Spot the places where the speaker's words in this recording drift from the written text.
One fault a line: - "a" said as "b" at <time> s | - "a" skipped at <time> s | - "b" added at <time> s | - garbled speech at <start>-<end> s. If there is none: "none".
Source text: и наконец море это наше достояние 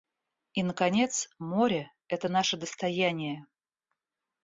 none